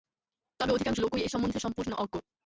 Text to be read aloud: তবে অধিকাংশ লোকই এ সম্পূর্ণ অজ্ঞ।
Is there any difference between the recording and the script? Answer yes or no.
yes